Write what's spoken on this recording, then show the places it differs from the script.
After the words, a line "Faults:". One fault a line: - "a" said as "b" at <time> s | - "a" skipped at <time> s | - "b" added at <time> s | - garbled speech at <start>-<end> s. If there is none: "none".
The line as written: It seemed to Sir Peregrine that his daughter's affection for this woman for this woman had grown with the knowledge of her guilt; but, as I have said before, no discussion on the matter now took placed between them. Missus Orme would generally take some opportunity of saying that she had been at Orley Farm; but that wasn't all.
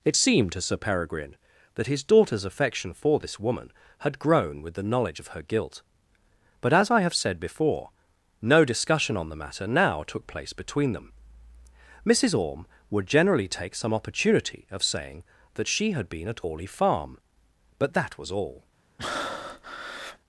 It seemed to Sir Peregrine that his daughter's affection for this woman had grown with the knowledge of her guilt; but, as I have said before, no discussion on the matter now took place between them. Missus Orme would generally take some opportunity of saying that she had been at Orley Farm; but that was all.
Faults:
- "for this woman" skipped at 3.7 s
- "placed" said as "place" at 10.3 s
- "wasn't" said as "was" at 18.2 s